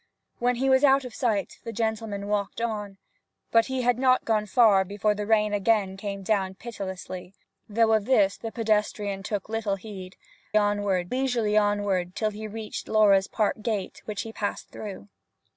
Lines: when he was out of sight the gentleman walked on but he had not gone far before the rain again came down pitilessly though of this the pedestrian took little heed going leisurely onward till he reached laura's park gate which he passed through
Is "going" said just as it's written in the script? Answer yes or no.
no